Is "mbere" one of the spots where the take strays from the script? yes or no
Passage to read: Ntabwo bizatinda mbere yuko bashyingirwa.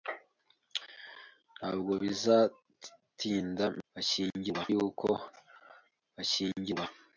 yes